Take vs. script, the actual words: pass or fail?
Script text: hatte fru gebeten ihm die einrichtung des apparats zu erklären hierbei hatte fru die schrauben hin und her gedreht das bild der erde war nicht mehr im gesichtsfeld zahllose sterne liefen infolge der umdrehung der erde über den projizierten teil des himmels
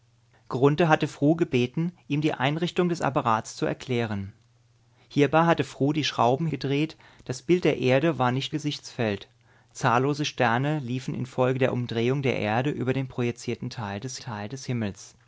fail